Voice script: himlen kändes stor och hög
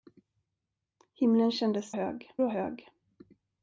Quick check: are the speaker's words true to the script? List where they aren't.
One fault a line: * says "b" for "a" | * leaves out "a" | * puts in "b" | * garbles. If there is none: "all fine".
* says "hög" for "stor"